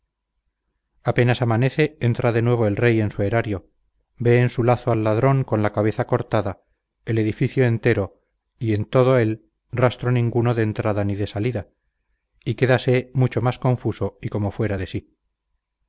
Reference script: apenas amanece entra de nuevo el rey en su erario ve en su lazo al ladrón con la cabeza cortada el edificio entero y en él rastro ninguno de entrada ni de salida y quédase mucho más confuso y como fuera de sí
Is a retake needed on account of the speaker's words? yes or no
yes